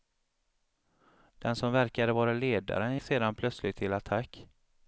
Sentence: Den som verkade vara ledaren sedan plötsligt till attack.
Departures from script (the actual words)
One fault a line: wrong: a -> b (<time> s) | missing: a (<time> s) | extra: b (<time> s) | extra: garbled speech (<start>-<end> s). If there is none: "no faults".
no faults